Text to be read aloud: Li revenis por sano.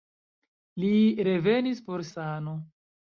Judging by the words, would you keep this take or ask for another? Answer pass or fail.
pass